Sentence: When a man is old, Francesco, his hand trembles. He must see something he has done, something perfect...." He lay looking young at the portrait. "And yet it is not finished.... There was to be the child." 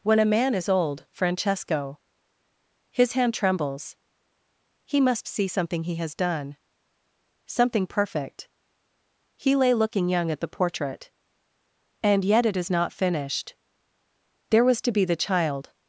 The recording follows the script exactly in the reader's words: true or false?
true